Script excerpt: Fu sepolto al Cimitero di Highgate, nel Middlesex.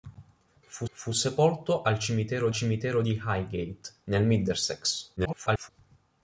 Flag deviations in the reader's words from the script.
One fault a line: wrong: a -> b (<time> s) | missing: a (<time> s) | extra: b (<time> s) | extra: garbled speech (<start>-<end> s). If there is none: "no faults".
extra: fu (0.9 s)
extra: Cimitero (2.5 s)
extra: garbled speech (5.2-5.7 s)